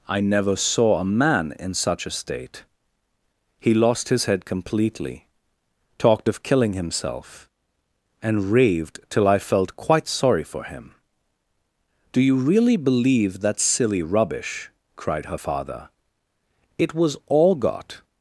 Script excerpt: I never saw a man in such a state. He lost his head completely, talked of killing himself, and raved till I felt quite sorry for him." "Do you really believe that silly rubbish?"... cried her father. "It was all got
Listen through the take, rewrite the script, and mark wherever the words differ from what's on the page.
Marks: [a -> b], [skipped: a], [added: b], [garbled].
I never saw a man in such a state. He lost his head completely, talked of killing himself, and raved till I felt quite sorry for him." "Do you really believe that silly rubbish?"... cried her father. "It was all got